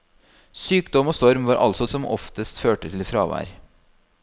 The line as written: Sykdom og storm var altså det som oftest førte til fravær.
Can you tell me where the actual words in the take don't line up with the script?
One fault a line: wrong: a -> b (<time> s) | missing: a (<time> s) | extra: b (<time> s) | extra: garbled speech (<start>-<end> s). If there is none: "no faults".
missing: det (1.9 s)